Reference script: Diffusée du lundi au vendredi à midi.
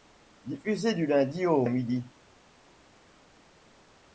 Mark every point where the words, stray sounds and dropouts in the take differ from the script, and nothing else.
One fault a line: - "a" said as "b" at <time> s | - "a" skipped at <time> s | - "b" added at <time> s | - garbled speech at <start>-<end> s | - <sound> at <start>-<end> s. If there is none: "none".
- "vendredi" skipped at 1.6 s